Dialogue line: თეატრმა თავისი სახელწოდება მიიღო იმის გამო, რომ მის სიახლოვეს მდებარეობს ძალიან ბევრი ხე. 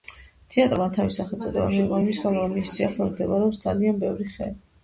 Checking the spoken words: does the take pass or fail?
pass